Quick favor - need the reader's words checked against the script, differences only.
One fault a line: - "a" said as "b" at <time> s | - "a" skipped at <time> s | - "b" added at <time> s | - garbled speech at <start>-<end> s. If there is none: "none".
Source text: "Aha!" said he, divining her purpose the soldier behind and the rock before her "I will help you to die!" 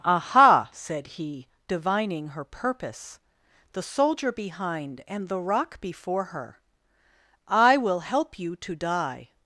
none